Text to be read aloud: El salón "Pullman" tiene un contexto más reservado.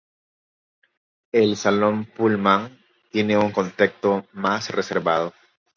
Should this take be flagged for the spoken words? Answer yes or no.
no